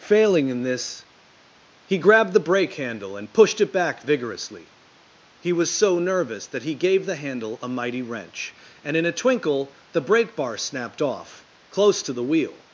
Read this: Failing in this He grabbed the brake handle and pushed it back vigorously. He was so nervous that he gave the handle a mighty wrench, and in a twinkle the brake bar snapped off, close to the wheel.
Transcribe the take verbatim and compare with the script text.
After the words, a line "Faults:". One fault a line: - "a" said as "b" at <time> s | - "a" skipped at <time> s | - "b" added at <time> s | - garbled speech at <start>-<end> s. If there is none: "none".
Failing in this He grabbed the brake handle and pushed it back vigorously. He was so nervous that he gave the handle a mighty wrench, and in a twinkle the brake bar snapped off, close to the wheel.
Faults:
none